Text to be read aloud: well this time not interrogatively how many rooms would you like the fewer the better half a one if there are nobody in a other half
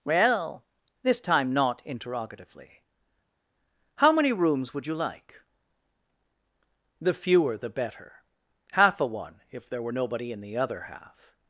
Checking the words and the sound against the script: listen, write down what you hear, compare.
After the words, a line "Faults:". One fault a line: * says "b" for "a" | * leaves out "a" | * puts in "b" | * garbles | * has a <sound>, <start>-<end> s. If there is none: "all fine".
well this time not interrogatively how many rooms would you like the fewer the better half a one if there were nobody in the other half
Faults:
* says "were" for "are"
* says "the" for "a"